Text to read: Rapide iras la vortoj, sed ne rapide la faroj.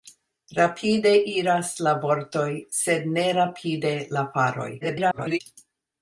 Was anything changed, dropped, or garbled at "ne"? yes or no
no